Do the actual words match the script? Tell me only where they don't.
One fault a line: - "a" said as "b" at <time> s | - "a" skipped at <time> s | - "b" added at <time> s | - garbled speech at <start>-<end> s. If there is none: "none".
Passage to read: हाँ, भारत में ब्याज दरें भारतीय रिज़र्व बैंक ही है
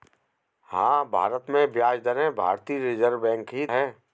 none